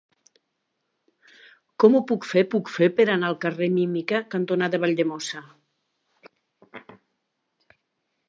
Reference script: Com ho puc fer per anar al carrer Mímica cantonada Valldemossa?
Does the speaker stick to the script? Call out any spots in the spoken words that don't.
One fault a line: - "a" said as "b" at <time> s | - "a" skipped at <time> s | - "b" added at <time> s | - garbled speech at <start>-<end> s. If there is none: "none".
- "puc fer" added at 2.5 s